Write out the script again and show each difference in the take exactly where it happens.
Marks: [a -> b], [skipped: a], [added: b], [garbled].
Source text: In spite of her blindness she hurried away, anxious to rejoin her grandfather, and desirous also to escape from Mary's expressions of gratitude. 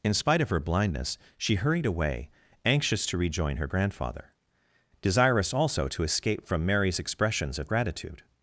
In spite of her blindness she hurried away, anxious to rejoin her grandfather, [skipped: and] desirous also to escape from Mary's expressions of gratitude.